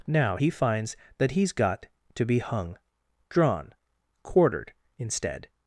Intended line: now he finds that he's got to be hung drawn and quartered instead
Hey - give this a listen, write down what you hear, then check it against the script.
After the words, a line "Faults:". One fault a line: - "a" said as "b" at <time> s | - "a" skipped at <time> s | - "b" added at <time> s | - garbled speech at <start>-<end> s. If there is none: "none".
now he finds that he's got to be hung drawn quartered instead
Faults:
- "and" skipped at 3.7 s